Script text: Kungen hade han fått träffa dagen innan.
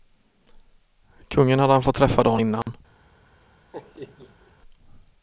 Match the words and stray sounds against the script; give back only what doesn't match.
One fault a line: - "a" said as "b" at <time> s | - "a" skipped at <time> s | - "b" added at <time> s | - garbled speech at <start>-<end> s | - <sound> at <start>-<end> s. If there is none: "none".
- dropout at 2.6-2.7 s
- laugh at 3.7-4.5 s